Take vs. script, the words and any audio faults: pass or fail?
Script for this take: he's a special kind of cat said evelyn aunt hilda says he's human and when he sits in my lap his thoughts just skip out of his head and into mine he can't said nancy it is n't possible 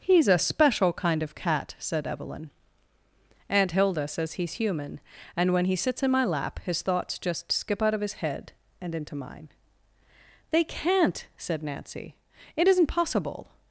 fail